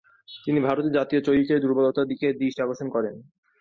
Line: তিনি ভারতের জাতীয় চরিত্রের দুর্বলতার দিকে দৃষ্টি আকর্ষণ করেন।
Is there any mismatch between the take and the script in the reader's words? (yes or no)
no